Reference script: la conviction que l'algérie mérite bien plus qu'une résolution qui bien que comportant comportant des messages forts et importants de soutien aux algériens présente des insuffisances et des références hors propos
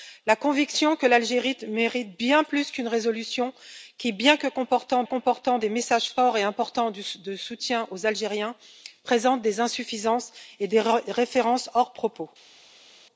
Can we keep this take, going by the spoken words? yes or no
yes